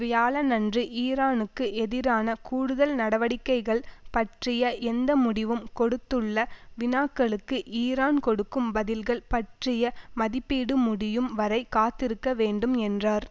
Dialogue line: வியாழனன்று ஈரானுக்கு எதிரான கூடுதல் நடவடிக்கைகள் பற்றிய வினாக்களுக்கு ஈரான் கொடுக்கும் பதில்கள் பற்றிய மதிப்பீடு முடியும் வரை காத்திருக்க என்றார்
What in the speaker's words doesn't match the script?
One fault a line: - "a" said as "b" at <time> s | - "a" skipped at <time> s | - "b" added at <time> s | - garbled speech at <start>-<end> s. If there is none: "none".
- "எந்த முடிவும் கொடுத்துள்ள" added at 4.9 s
- "வேண்டும்" added at 12.3 s